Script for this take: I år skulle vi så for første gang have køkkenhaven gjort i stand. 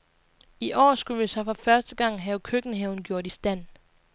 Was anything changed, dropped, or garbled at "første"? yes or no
no